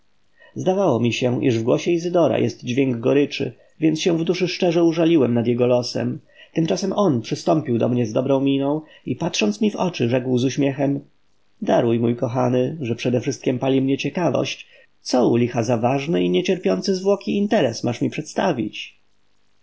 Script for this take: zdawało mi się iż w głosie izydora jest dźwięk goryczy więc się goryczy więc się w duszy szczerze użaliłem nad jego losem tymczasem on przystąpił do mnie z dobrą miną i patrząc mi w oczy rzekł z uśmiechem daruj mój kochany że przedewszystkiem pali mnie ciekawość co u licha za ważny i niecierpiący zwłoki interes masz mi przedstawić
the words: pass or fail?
fail